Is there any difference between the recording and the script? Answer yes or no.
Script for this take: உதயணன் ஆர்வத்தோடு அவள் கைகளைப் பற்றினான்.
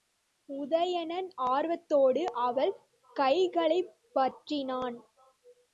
no